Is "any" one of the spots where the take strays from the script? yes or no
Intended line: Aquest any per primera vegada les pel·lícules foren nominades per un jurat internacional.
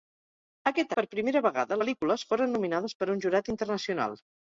yes